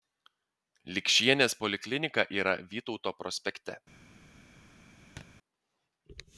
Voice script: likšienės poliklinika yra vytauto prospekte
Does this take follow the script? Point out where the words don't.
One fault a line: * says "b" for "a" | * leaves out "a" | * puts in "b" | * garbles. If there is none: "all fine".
all fine